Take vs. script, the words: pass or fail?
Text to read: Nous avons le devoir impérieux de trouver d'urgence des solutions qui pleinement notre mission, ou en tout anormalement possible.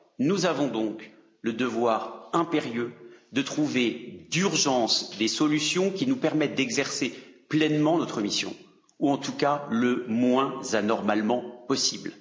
fail